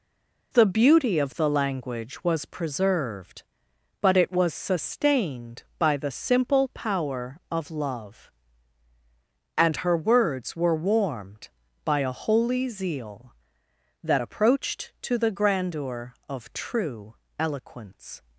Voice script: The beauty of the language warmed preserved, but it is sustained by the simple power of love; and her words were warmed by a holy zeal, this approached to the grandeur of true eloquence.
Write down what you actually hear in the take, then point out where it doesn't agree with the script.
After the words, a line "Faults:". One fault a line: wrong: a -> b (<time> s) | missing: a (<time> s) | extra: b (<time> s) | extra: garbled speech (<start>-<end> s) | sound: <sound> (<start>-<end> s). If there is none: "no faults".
The beauty of the language was preserved, but it was sustained by the simple power of love; and her words were warmed by a holy zeal, that approached to the grandeur of true eloquence.
Faults:
wrong: warmed -> was (2.2 s)
wrong: is -> was (4.3 s)
wrong: this -> that (14.0 s)